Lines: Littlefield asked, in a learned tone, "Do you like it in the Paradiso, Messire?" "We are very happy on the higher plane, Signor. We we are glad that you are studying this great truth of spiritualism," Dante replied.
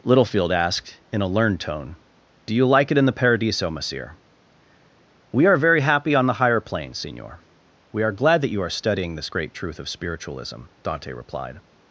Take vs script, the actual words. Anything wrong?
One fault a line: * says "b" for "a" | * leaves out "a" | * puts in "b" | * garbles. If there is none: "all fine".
* leaves out "we"